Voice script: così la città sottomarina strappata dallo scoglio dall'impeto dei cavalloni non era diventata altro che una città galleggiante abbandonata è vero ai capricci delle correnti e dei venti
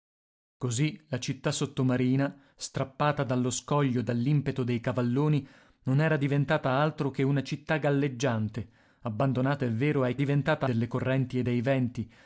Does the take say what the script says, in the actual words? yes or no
no